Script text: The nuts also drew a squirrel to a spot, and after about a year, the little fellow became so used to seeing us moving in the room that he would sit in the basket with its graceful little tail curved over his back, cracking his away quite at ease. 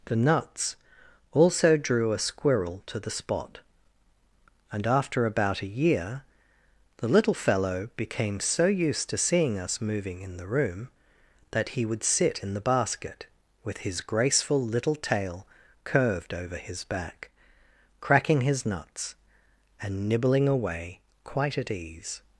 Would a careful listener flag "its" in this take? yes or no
yes